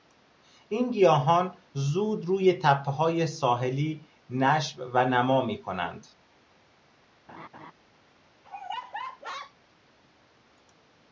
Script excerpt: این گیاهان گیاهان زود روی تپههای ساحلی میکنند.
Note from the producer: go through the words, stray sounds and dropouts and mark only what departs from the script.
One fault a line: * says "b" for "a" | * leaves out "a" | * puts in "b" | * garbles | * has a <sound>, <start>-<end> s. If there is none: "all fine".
* leaves out "گیاهان"
* puts in "نشو و نما"
* has a laugh, 7.3-7.7 s
* has a laugh, 8.4-9.5 s